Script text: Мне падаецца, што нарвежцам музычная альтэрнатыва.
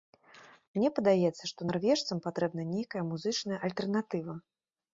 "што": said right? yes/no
yes